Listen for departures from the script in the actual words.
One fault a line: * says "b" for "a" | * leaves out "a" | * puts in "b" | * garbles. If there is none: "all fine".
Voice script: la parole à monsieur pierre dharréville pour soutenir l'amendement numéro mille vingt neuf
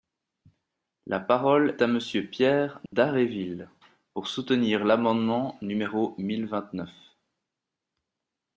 all fine